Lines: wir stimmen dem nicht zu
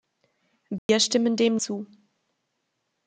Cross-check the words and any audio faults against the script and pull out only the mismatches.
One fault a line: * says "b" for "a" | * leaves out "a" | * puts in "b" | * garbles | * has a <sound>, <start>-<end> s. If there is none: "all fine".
* has a dropout, 0.8-0.9 s
* leaves out "nicht"